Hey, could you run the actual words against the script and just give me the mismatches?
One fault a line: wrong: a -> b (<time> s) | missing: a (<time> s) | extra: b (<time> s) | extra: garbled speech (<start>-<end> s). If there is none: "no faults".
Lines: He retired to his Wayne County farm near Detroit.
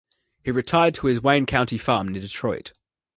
no faults